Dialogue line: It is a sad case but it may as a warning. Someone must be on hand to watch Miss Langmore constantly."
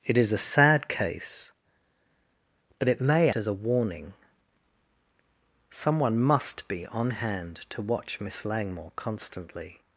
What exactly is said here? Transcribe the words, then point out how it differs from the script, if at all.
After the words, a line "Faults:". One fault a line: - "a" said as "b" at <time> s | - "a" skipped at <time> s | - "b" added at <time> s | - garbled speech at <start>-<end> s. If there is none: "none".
It is a sad case but it may as a warning. Someone must be on hand to watch Miss Langmore constantly."
Faults:
none